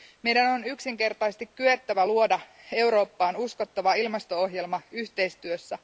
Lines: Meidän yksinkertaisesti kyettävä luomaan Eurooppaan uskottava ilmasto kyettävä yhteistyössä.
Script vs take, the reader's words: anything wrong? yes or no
yes